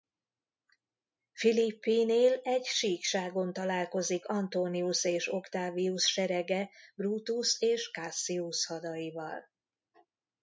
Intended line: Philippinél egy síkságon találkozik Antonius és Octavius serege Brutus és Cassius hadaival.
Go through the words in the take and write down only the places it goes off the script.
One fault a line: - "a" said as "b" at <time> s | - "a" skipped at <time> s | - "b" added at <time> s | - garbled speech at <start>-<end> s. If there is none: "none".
none